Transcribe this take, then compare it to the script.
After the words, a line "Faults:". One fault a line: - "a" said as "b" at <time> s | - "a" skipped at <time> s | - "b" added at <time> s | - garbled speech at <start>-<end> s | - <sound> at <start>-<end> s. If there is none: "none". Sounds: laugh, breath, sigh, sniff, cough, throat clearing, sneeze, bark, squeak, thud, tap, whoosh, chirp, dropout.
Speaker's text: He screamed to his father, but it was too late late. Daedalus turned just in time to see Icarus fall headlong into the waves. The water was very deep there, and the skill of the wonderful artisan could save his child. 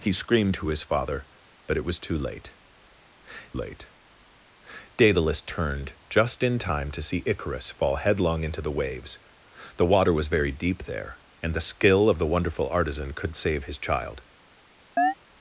He screamed to his father, but it was too late late. Daedalus turned just in time to see Icarus fall headlong into the waves. The water was very deep there, and the skill of the wonderful artisan could save his child.
Faults:
- chirp at 15.0-15.1 s